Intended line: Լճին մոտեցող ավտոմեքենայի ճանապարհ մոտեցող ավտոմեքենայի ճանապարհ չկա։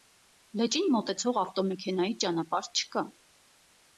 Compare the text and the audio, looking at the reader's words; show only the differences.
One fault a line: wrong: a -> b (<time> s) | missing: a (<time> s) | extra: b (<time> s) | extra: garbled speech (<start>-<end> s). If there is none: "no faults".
missing: մոտեցող ավտոմեքենայի ճանապարհ (2.7 s)